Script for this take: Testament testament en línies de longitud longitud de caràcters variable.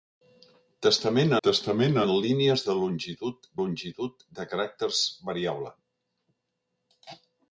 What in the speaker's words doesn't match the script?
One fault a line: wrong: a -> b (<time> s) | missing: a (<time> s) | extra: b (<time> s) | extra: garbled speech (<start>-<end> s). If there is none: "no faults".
no faults